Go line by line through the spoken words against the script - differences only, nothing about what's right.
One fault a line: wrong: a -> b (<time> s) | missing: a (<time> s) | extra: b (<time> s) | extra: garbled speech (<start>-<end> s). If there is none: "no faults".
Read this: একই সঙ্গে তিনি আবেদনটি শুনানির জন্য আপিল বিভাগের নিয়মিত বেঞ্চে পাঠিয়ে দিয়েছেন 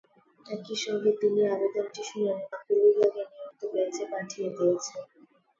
missing: জন্য (2.5 s)